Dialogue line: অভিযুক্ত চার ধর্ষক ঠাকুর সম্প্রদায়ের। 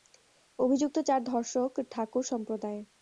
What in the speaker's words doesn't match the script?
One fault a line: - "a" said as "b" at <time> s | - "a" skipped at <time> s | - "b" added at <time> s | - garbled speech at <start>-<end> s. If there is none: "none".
none